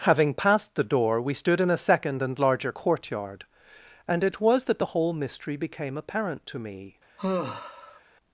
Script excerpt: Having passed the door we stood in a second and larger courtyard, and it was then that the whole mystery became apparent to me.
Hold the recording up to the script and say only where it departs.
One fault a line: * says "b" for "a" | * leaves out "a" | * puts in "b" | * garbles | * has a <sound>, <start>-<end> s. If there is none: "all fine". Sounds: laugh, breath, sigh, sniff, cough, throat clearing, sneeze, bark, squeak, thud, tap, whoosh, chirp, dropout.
* leaves out "then"
* has a sigh, 7.2-8.0 s